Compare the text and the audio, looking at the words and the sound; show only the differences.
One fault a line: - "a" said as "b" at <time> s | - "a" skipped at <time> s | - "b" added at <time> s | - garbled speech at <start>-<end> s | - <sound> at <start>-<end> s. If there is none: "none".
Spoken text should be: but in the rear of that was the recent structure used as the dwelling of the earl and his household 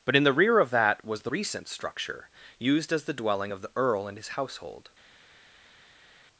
none